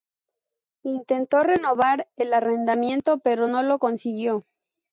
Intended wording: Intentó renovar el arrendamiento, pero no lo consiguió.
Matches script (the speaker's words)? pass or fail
pass